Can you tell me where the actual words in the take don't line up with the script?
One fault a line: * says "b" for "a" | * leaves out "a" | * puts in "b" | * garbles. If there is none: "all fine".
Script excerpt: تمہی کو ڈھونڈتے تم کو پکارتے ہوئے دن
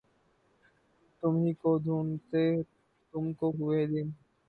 * leaves out "پکارتے"